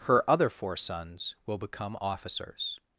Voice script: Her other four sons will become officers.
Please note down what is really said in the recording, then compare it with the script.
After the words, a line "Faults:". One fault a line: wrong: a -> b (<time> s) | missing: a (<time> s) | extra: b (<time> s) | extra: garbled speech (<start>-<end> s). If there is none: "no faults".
Her other four sons will become officers.
Faults:
no faults